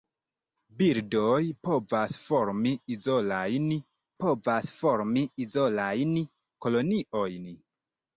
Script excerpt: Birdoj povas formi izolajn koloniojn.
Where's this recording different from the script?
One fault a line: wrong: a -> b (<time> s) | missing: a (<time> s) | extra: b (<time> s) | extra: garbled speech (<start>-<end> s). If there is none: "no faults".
extra: povas formi izolajn (4.2 s)